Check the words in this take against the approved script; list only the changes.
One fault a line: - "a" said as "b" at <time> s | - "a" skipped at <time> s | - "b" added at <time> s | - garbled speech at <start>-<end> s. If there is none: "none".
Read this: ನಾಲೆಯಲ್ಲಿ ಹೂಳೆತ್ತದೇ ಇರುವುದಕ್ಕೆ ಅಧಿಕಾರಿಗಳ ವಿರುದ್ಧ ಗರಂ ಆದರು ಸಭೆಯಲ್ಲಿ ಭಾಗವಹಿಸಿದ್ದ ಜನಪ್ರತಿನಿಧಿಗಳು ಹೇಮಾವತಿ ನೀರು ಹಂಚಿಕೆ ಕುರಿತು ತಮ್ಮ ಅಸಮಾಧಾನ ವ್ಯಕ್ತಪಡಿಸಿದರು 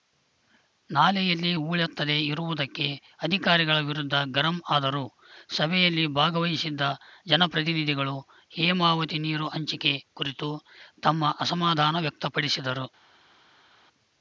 none